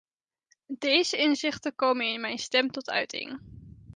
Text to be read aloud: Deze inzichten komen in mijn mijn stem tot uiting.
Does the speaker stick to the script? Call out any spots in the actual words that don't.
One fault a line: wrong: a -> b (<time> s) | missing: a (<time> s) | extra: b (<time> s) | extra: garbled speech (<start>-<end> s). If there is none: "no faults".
missing: mijn (2.4 s)